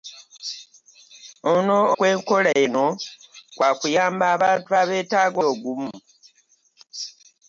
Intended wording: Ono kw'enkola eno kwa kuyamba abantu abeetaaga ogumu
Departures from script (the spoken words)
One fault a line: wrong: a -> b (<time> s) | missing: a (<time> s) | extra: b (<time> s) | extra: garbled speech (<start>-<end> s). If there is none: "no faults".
no faults